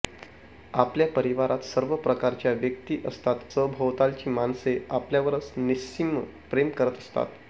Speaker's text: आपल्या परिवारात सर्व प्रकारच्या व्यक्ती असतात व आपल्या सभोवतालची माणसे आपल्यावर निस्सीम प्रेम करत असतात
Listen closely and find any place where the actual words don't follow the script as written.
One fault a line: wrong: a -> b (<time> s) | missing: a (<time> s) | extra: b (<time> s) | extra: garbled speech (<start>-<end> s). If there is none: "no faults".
missing: व आपल्या (3.5 s)